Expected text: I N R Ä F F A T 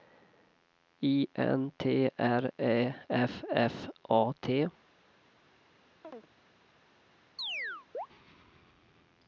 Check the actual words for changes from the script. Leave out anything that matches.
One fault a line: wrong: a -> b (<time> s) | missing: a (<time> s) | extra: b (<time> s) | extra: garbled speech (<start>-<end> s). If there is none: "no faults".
extra: T (1.8 s)